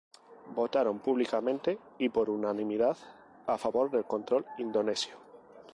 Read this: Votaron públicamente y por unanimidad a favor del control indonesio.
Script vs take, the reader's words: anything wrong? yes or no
no